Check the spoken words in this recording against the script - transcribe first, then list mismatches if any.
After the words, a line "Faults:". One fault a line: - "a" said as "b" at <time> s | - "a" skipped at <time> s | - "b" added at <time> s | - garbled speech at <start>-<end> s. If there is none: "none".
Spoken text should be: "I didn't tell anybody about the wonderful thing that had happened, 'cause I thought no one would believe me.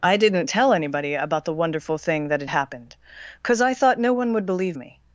"I didn't tell anybody about the wonderful thing that had happened, 'cause I thought no one would believe me.
Faults:
none